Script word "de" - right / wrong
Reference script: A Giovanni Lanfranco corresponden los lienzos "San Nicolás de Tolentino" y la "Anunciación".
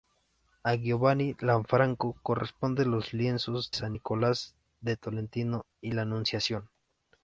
right